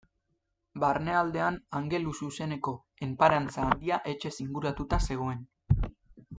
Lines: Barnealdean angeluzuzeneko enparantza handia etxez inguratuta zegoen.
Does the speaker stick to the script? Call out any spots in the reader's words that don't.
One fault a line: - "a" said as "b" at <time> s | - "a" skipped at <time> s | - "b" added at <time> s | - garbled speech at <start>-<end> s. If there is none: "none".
none